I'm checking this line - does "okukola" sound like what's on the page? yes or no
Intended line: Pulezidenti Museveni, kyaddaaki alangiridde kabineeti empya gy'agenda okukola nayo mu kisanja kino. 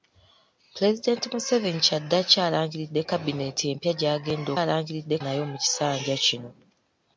no